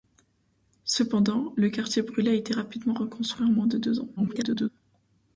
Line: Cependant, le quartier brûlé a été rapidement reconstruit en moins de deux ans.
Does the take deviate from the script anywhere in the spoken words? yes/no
yes